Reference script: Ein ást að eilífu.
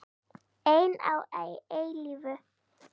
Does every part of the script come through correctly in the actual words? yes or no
no